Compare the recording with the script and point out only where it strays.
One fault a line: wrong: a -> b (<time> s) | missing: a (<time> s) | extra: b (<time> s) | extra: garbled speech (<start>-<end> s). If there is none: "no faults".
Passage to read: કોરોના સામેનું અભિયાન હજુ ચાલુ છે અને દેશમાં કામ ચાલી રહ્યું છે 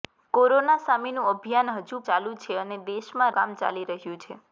no faults